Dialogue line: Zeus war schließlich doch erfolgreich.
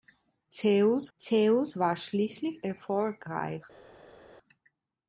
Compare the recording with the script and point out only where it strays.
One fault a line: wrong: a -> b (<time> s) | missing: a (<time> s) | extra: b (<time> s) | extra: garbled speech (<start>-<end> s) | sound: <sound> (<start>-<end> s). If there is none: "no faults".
extra: zeus (1.2 s)
missing: doch (2.7 s)